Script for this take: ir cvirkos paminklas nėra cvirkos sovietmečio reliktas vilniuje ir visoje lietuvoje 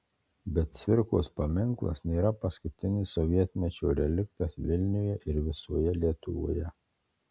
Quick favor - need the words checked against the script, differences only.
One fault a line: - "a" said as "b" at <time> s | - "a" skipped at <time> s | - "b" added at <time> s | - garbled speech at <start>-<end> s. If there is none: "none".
- "ir" said as "bet" at 0.5 s
- "cvirkos" said as "paskutinis" at 2.5 s